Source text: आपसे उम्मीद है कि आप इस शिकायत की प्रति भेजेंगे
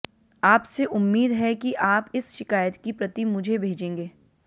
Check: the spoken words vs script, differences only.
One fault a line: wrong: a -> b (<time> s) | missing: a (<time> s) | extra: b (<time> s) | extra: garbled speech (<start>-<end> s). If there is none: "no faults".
extra: मुझे (3.2 s)